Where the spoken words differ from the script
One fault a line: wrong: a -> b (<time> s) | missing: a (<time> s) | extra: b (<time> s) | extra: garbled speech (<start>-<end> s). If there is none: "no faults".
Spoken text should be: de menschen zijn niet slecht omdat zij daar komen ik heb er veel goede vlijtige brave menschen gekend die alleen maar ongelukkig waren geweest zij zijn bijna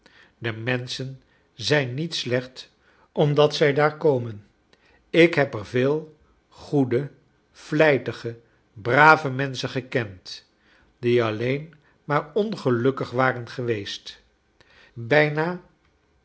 missing: zij zijn (14.2 s)